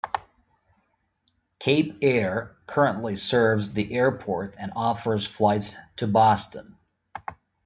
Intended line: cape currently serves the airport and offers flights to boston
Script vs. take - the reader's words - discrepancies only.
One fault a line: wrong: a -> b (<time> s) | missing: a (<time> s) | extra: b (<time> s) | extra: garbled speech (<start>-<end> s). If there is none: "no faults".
extra: air (2.0 s)